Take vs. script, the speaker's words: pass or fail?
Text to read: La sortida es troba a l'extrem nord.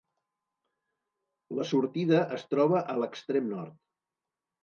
pass